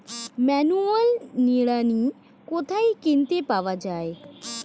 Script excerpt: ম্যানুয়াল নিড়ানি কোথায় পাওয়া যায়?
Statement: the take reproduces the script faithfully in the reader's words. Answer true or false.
false